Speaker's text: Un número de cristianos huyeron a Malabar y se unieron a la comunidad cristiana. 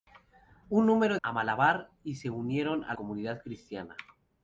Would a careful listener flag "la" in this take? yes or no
yes